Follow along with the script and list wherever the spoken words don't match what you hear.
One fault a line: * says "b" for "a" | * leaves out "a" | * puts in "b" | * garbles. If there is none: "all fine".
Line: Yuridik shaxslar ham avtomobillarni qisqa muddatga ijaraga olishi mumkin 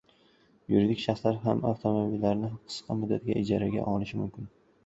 all fine